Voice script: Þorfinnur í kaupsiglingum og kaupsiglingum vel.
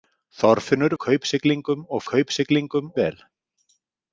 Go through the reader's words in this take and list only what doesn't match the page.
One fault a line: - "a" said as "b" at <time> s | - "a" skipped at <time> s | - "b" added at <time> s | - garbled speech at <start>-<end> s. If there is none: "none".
none